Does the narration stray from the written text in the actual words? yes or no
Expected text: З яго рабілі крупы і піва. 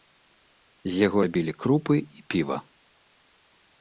no